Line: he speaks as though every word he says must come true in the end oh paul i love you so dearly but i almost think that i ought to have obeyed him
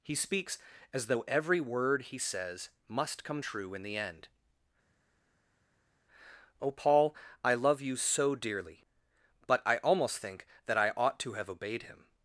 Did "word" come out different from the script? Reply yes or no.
no